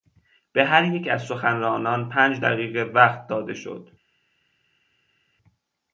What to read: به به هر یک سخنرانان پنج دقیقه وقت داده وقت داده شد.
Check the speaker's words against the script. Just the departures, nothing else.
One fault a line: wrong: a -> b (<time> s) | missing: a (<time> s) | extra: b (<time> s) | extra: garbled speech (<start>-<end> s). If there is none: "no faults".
missing: به (0.7 s)
extra: از (1.1 s)
missing: وقت داده (3.5 s)